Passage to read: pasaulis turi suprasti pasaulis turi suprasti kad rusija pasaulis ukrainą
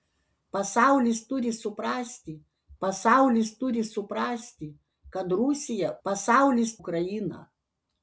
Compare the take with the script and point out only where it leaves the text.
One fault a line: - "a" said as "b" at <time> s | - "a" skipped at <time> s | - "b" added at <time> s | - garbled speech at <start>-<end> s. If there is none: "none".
none